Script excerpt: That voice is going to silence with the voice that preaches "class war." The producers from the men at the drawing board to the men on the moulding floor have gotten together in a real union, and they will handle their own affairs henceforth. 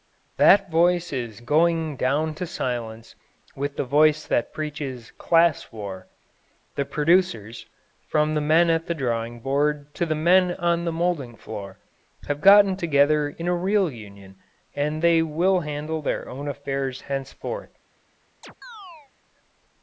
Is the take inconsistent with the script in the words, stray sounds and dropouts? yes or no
yes